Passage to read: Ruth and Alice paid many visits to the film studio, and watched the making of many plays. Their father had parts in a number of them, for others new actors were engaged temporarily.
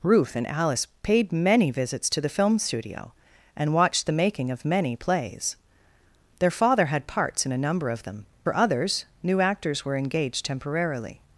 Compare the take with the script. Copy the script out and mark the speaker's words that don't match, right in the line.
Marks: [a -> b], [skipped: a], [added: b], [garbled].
Ruth and Alice paid many visits to the film studio, and watched the making of many plays. Their father had parts in a number of them, for others new actors were engaged temporarily.